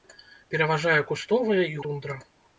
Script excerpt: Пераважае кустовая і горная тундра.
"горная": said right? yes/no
no